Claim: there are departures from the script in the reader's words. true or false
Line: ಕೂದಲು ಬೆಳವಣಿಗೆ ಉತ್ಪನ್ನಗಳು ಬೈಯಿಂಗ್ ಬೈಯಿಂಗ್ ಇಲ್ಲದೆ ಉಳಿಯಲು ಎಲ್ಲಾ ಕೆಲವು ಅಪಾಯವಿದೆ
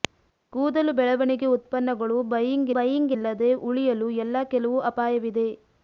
false